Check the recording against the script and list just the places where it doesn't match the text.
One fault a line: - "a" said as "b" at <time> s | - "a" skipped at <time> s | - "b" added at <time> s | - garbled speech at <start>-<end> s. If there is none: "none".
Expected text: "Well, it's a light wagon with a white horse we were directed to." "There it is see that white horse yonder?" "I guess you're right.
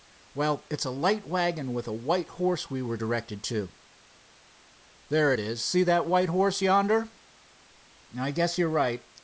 none